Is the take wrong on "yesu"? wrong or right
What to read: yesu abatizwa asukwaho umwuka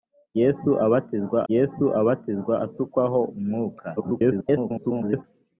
right